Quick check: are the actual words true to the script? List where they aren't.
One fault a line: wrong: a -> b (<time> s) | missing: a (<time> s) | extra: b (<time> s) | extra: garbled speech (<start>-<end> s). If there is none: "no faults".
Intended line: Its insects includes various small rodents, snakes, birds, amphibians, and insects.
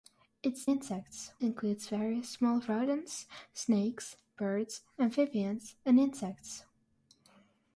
no faults